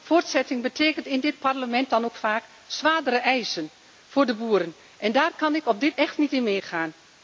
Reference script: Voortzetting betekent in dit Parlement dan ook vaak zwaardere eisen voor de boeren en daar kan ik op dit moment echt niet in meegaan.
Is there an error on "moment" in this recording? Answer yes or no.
yes